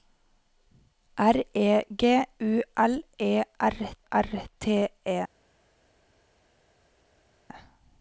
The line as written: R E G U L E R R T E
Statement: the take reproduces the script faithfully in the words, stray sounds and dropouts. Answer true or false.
true